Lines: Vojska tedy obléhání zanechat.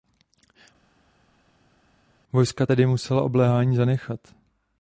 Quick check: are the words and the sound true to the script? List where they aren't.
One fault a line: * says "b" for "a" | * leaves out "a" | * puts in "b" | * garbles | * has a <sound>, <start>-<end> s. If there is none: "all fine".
* puts in "musela"